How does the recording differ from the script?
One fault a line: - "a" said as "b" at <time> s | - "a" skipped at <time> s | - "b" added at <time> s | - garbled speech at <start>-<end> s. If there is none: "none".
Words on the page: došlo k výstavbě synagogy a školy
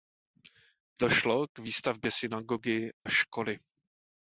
- "a" skipped at 2.9 s